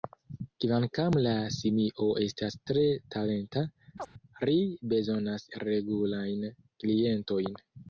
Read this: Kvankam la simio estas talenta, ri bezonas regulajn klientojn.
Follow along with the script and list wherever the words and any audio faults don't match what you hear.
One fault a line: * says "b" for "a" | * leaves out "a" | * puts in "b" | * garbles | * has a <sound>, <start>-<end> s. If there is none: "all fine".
* puts in "tre"
* has a chirp, 4.0-4.1 s